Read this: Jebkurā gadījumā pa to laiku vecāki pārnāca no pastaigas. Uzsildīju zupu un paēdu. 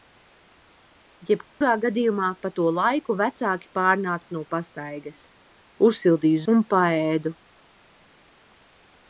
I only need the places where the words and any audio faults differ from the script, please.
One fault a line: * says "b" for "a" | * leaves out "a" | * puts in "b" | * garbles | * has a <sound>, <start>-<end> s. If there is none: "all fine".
* has a dropout, 1.5-1.6 s
* leaves out "zupu"